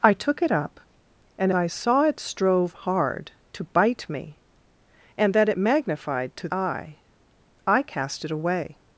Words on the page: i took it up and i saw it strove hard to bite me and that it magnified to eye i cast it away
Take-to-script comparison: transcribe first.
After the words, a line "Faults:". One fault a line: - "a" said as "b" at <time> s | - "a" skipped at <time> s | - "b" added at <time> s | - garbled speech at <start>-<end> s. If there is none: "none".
i took it up and i saw it strove hard to bite me and that it magnified to eye i cast it away
Faults:
none